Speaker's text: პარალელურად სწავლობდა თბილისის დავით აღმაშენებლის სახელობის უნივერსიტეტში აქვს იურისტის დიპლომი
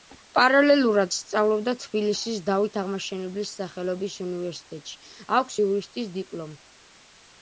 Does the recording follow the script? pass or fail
pass